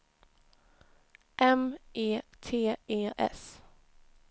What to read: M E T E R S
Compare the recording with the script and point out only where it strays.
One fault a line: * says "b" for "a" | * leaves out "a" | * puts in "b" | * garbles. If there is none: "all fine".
* leaves out "R"